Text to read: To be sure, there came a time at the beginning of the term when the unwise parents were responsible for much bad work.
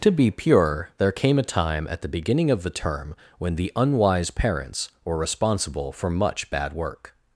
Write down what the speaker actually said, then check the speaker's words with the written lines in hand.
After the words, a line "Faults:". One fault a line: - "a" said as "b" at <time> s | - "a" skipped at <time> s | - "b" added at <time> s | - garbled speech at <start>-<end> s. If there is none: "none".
To be pure, there came a time at the beginning of the term when the unwise parents were responsible for much bad work.
Faults:
- "sure" said as "pure" at 0.3 s